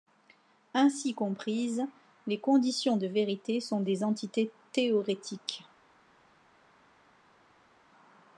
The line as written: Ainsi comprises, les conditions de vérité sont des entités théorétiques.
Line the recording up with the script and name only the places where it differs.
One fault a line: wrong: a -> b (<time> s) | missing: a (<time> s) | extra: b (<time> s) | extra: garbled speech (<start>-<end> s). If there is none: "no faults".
no faults